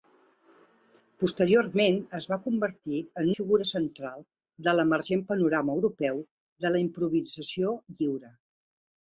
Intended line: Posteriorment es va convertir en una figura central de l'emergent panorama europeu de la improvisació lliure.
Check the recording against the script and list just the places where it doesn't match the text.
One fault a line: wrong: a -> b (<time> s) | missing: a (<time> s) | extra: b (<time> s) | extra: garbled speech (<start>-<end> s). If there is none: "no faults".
missing: una (3.3 s)